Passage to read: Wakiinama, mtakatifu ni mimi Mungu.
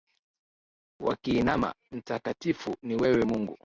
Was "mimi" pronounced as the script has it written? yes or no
no